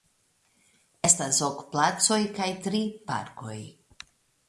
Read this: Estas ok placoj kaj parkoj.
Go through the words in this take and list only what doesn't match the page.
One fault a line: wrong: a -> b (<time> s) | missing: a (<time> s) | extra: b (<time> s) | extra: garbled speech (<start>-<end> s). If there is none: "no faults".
extra: tri (2.7 s)